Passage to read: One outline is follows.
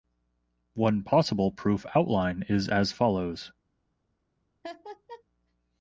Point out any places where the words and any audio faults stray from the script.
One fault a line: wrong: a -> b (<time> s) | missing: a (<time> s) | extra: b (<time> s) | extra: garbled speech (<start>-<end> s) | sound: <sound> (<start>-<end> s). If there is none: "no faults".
extra: possible proof (1.0 s)
extra: as (2.7 s)
sound: laugh (4.6-5.2 s)